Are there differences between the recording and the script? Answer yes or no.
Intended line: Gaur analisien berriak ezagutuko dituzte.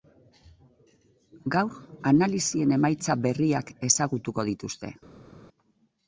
yes